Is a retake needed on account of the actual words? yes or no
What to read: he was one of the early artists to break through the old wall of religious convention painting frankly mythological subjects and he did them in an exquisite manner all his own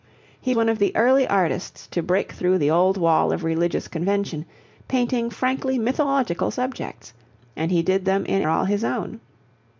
yes